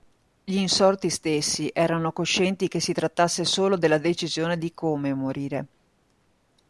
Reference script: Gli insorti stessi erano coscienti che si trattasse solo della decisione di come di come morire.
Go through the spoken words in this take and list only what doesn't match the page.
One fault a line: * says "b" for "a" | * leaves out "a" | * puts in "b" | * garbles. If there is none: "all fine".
* leaves out "di come"